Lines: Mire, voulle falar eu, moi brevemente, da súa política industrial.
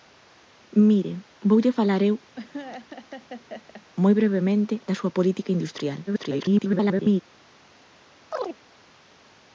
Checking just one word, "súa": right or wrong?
right